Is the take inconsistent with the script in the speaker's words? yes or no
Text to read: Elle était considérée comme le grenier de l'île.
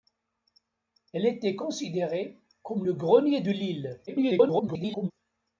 yes